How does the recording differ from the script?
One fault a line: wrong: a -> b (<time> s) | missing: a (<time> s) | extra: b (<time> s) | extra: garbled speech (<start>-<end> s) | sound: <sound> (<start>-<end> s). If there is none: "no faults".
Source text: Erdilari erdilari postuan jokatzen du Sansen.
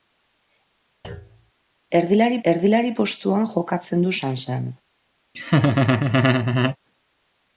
sound: thud (1.0-1.5 s)
sound: laugh (5.3-6.8 s)